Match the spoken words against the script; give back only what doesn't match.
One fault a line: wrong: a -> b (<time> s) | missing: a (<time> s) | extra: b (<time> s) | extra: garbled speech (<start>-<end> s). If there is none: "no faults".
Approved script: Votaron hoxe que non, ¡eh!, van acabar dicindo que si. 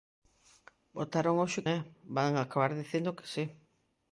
missing: que non (1.6 s)